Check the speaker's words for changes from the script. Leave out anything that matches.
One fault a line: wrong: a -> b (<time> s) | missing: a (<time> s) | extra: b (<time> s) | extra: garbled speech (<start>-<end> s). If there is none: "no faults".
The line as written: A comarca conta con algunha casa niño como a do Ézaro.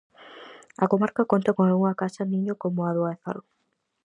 no faults